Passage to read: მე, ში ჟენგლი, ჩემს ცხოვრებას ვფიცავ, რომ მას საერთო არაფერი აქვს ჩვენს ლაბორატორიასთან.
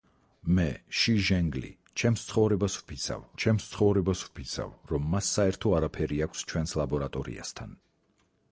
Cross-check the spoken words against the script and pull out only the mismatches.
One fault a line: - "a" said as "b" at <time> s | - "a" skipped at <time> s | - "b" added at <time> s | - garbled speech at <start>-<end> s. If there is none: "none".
- "ჩემს ცხოვრებას ვფიცავ" added at 3.4 s